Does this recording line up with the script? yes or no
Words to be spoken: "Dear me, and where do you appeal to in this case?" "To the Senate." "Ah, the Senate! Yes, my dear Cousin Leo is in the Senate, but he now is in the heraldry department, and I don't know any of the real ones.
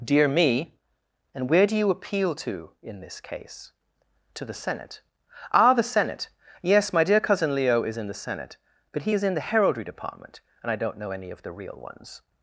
no